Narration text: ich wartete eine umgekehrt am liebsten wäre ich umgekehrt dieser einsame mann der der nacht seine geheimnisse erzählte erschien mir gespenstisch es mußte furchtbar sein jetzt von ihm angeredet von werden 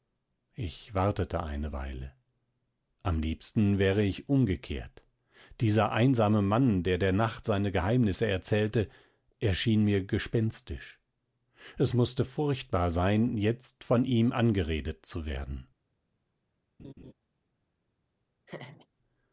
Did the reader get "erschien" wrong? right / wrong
right